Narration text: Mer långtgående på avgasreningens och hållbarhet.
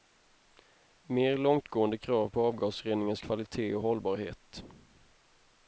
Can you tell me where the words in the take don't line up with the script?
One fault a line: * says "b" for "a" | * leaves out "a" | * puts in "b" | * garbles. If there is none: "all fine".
* puts in "krav"
* puts in "kvalitet"